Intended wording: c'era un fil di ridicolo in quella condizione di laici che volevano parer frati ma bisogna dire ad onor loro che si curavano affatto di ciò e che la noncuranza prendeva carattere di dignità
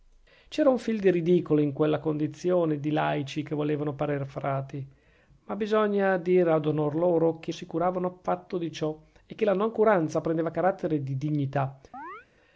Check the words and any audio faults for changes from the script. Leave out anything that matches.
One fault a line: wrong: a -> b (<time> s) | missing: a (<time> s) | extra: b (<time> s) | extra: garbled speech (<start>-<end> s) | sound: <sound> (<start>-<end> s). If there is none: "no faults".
sound: chirp (11.9-12.3 s)